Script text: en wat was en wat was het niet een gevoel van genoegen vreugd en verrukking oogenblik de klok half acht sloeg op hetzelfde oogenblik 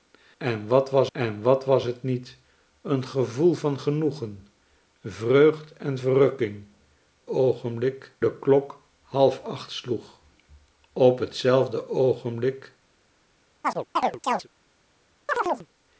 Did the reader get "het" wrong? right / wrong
right